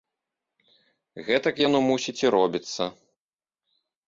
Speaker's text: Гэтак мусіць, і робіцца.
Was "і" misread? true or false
false